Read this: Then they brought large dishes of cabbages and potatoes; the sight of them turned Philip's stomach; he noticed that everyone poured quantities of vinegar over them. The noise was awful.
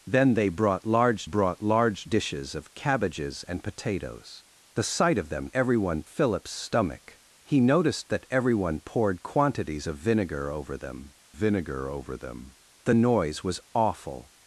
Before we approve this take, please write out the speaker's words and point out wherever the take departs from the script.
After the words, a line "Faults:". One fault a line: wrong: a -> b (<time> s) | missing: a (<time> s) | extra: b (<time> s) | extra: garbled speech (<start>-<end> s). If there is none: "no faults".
Then they brought large brought large dishes of cabbages and potatoes; the sight of them everyone Philip's stomach; he noticed that everyone poured quantities of vinegar over them vinegar over them. The noise was awful.
Faults:
extra: brought large (1.2 s)
wrong: turned -> everyone (5.5 s)
extra: vinegar over them (11.3 s)